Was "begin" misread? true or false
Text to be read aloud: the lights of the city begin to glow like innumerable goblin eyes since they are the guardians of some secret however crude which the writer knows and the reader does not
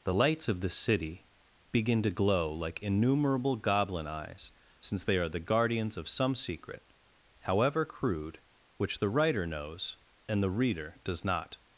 false